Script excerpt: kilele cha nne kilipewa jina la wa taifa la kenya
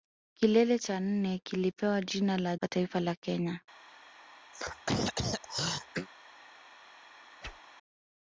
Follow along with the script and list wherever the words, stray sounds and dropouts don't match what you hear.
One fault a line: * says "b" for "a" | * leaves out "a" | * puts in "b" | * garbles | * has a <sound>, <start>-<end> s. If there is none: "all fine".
* has a throat clearing, 4.5-6.1 s
* has a whoosh, 7.4-7.6 s